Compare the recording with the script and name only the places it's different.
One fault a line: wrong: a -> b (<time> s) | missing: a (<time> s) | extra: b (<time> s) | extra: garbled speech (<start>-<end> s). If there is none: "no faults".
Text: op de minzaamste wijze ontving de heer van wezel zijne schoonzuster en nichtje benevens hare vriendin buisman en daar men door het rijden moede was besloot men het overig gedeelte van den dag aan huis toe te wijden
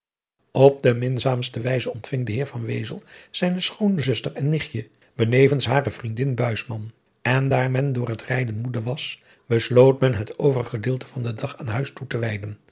no faults